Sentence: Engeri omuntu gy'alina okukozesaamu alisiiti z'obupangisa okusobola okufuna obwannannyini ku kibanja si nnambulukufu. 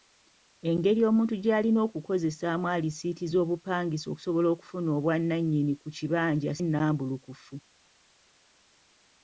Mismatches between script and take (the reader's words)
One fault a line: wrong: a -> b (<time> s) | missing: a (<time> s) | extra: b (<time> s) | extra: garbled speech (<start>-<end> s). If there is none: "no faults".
missing: si (6.5 s)